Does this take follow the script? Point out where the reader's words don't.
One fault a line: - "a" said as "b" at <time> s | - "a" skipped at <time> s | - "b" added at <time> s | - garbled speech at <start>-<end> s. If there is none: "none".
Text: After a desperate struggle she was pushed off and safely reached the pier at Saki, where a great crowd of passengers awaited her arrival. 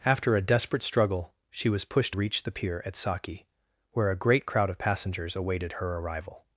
- "off and safely" skipped at 2.1 s